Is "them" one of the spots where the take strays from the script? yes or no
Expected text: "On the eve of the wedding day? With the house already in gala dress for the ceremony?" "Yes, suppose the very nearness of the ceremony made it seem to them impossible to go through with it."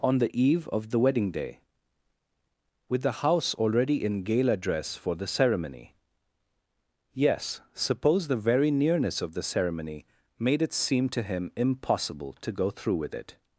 yes